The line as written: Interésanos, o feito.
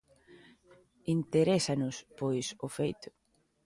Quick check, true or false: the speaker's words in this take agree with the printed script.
false